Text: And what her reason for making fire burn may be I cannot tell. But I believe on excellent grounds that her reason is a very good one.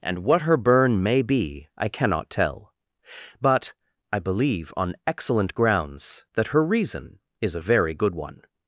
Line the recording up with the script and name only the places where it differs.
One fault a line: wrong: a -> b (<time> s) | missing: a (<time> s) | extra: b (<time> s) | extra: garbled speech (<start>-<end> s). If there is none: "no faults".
missing: reason for making fire (0.6 s)